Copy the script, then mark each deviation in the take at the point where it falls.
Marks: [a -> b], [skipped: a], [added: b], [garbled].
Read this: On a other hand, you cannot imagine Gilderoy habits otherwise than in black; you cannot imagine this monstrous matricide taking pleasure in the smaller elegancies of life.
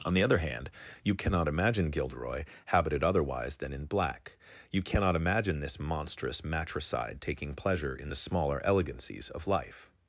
On [a -> the] other hand, you cannot imagine Gilderoy [habits -> habited] otherwise than in black; you cannot imagine this monstrous matricide taking pleasure in the smaller elegancies of life.